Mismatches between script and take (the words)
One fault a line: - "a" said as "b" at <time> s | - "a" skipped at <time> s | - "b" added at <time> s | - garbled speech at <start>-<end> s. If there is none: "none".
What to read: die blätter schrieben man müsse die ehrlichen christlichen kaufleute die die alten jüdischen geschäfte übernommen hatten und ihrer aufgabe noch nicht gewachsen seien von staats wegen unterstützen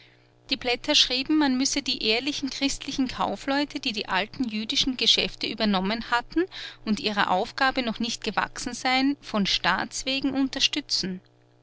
none